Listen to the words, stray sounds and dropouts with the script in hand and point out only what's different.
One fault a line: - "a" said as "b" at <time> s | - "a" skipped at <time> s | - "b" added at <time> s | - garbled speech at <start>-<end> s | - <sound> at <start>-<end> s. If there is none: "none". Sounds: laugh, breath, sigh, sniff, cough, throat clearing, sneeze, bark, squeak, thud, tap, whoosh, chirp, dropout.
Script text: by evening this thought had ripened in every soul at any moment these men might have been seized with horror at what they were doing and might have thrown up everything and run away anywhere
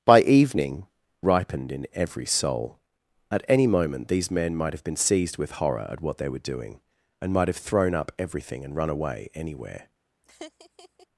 - "this thought had" skipped at 0.9 s
- laugh at 10.2-11.1 s